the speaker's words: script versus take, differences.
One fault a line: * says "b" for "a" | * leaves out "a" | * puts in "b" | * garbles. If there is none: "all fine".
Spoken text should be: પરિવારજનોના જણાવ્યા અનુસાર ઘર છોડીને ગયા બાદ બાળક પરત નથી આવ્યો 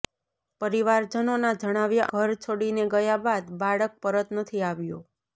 * leaves out "અનુસાર"